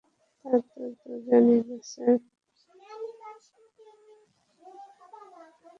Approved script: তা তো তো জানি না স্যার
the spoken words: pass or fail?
pass